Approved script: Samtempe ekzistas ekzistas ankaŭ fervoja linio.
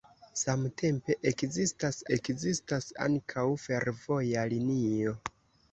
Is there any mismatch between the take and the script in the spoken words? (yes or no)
no